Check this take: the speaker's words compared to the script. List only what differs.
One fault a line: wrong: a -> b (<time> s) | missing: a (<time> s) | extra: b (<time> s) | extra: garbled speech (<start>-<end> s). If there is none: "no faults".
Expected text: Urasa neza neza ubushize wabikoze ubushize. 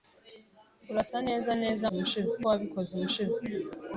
no faults